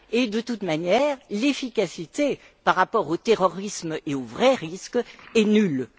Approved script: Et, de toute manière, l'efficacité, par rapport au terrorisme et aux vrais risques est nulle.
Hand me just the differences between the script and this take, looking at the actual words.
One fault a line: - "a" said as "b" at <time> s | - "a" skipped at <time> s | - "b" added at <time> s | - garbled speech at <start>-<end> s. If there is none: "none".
none